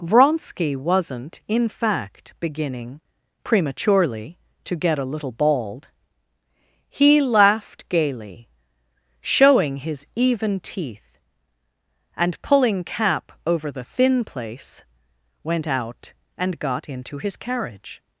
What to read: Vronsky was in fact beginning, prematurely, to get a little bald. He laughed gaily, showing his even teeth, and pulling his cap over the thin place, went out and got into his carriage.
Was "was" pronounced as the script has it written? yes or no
no